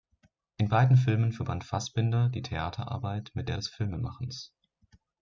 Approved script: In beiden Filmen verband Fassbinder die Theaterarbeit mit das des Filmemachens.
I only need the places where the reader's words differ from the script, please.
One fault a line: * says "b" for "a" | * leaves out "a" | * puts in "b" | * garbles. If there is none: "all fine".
* says "der" for "das"